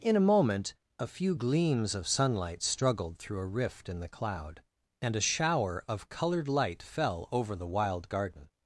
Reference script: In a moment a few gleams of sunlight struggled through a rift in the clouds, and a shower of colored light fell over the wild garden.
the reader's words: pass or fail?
fail